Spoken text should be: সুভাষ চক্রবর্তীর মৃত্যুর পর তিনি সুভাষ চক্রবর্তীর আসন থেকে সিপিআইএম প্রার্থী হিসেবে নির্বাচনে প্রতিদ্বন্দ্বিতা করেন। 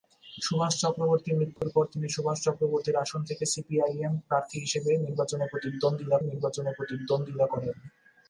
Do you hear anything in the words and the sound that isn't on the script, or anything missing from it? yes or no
yes